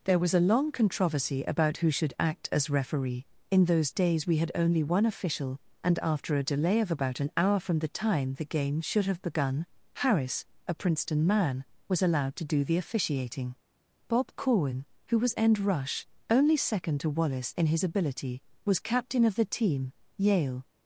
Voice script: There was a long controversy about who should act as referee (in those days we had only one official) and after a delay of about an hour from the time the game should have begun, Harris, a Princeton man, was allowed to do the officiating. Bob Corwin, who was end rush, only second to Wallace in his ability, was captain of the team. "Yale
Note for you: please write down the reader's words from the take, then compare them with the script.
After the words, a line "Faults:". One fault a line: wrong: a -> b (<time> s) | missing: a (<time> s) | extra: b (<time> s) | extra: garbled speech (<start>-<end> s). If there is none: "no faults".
There was a long controversy about who should act as referee (in those days we had only one official) and after a delay of about an hour from the time the game should have begun, Harris, a Princeton man, was allowed to do the officiating. Bob Corwin, who was end rush, only second to Wallace in his ability, was captain of the team. "Yale
Faults:
no faults